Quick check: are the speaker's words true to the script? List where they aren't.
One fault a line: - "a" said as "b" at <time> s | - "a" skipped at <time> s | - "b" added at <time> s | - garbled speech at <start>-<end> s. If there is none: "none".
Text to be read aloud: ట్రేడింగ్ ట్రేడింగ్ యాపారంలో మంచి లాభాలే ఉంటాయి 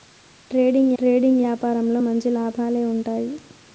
none